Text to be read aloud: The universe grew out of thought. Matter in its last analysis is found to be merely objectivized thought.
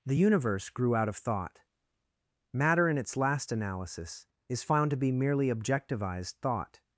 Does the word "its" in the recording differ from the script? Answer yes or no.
no